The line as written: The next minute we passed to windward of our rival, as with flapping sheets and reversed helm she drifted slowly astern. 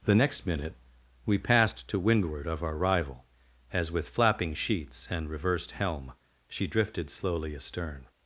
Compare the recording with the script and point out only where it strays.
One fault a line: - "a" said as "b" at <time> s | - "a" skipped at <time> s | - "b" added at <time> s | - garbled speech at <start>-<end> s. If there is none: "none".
none